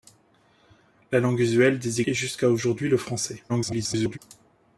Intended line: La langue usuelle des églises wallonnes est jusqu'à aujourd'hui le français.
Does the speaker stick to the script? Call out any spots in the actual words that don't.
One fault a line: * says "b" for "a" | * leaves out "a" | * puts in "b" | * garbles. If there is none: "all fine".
* leaves out "églises wallonnes"
* garbles